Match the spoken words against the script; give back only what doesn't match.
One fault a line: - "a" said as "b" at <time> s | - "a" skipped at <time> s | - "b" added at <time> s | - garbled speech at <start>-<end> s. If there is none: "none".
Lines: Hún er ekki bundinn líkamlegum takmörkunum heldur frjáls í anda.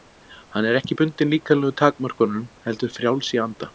- "Hún" said as "Hann" at 0.6 s